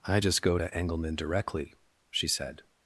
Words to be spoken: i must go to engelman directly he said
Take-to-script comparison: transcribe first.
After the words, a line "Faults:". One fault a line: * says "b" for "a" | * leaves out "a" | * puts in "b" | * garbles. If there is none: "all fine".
i just go to engelman directly she said
Faults:
* says "just" for "must"
* says "she" for "he"